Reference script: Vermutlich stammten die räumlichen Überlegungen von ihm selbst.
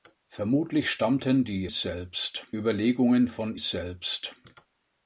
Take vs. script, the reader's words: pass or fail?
fail